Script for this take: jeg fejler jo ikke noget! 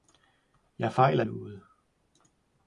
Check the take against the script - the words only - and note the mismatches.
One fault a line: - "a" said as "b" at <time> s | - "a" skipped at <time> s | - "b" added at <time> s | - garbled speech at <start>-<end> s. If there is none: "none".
- "jo ikke" skipped at 1.2 s